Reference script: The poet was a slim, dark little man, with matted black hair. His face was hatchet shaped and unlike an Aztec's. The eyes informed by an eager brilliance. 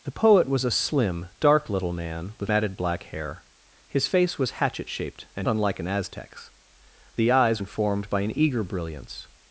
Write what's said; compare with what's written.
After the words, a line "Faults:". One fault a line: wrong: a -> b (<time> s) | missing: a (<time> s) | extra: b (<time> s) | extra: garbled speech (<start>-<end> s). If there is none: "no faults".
The poet was a slim, dark little man, with matted black hair. His face was hatchet shaped and unlike an Aztec's. The eyes informed by an eager brilliance.
Faults:
no faults